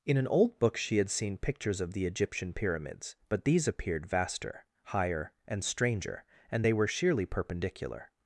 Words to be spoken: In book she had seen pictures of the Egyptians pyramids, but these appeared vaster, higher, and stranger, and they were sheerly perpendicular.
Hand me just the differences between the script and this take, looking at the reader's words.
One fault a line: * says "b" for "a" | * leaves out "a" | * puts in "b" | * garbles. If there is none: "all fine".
* puts in "an old"
* says "Egyptian" for "Egyptians"